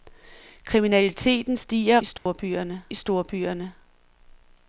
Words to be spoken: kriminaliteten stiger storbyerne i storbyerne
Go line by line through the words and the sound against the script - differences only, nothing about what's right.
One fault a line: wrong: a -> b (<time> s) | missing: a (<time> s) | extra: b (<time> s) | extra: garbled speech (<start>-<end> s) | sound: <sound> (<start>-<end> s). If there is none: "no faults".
sound: dropout (2.2-2.3 s)